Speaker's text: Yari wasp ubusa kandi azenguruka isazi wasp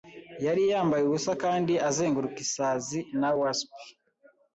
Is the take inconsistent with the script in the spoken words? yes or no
yes